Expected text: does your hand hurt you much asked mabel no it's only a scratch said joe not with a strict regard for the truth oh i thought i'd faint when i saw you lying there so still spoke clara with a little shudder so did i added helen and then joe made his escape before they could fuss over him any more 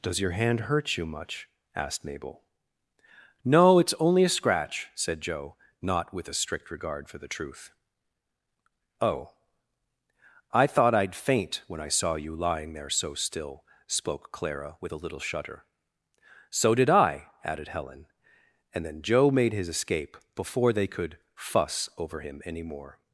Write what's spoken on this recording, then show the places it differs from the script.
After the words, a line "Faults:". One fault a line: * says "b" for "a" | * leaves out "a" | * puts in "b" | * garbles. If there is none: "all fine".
does your hand hurt you much asked mabel no it's only a scratch said joe not with a strict regard for the truth oh i thought i'd faint when i saw you lying there so still spoke clara with a little shudder so did i added helen and then joe made his escape before they could fuss over him any more
Faults:
all fine